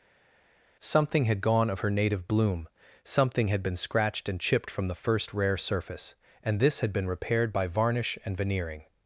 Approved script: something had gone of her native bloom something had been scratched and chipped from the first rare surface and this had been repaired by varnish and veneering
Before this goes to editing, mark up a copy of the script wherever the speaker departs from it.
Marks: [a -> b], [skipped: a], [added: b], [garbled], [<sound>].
something had gone of her native bloom something had been scratched and chipped from the first rare surface and this had been repaired by varnish and veneering